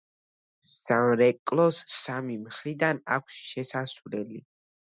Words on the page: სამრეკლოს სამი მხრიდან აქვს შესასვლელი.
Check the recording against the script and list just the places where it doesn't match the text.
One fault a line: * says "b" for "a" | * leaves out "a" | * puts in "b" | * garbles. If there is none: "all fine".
all fine